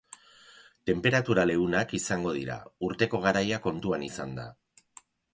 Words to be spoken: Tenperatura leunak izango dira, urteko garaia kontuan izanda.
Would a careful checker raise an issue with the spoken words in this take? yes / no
no